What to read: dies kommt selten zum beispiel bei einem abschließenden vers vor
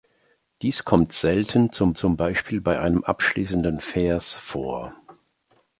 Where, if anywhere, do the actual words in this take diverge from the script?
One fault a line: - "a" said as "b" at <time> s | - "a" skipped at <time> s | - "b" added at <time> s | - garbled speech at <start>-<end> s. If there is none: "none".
- "zum" added at 1.9 s